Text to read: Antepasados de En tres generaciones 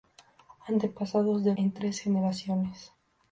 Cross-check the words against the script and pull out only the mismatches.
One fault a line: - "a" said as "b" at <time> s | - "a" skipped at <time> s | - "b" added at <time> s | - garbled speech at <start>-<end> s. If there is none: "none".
none